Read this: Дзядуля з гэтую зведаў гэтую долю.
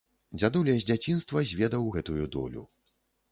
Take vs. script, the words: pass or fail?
fail